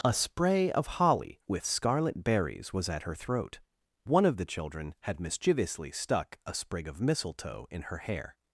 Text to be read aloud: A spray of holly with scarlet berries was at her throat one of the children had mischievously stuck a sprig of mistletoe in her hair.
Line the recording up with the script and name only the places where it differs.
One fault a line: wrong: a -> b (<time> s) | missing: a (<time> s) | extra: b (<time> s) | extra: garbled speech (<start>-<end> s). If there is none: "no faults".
no faults